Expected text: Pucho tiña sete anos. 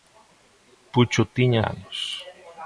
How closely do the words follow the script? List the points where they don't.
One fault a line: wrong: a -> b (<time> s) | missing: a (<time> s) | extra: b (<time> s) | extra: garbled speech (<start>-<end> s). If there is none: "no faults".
missing: sete (1.6 s)